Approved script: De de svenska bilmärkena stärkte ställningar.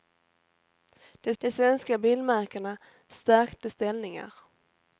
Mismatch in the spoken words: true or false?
false